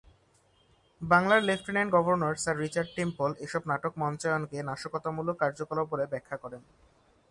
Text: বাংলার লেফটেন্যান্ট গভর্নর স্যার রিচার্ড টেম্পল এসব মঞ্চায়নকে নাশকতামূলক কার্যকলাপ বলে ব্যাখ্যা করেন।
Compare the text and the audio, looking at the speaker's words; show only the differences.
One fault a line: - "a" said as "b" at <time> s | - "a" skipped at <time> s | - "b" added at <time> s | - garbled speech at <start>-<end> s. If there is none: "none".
- "নাটক" added at 3.7 s